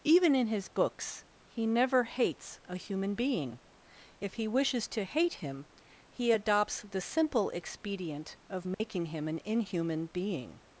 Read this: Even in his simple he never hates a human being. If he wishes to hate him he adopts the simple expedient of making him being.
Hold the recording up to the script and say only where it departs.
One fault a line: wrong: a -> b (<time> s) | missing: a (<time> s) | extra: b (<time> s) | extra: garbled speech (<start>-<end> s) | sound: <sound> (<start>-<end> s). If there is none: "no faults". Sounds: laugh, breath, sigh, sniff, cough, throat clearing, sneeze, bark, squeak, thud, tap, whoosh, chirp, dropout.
wrong: simple -> books (0.7 s)
sound: dropout (8.7-8.8 s)
extra: an inhuman (9.3 s)